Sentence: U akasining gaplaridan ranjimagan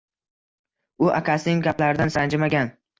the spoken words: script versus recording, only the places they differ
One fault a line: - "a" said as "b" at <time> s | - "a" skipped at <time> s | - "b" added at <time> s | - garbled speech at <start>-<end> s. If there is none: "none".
none